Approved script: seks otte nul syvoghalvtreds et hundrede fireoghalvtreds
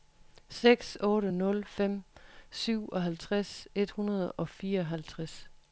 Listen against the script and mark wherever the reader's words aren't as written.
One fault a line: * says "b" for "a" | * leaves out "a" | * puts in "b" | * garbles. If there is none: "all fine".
* puts in "fem"
* puts in "og"